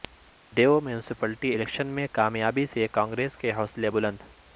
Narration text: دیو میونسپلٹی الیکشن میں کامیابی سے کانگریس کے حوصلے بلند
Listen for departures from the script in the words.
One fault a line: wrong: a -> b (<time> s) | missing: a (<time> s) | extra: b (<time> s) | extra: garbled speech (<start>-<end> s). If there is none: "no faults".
no faults